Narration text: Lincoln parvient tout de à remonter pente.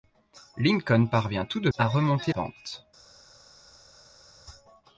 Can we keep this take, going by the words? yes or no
yes